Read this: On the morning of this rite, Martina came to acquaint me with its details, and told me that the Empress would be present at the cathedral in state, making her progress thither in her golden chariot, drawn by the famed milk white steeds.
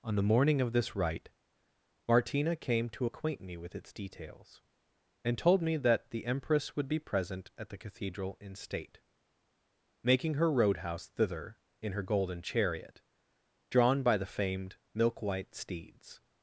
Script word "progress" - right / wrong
wrong